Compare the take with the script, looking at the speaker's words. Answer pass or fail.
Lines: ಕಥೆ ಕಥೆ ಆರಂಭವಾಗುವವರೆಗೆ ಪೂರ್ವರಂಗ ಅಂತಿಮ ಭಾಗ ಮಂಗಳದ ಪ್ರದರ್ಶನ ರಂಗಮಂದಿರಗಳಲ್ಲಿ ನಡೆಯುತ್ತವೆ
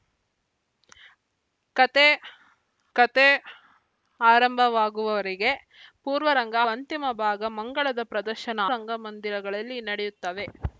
pass